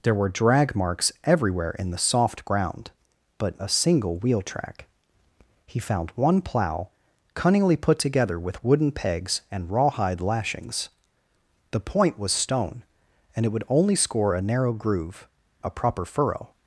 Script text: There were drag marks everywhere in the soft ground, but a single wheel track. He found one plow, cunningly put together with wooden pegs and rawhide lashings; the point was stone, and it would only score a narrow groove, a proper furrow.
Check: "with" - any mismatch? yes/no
no